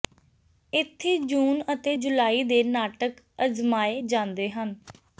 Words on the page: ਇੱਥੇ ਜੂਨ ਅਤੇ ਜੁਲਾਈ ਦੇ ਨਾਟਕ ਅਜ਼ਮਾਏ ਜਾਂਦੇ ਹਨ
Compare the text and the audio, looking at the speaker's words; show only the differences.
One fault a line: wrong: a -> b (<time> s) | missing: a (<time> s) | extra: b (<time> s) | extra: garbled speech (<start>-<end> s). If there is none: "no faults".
no faults